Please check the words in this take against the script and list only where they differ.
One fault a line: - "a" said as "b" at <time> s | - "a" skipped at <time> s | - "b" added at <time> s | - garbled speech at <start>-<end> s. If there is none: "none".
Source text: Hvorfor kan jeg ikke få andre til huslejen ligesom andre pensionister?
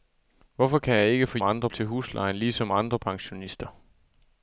none